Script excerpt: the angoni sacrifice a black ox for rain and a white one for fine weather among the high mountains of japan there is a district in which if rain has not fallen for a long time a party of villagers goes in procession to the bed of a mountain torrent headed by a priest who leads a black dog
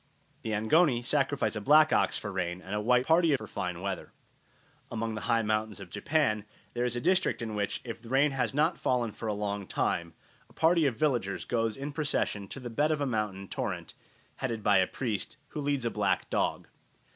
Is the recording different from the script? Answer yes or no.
yes